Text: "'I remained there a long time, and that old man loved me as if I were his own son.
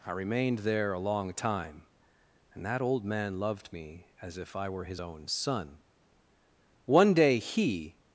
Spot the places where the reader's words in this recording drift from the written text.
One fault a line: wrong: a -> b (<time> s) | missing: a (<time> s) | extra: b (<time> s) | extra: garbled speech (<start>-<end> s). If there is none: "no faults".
extra: One day he (6.8 s)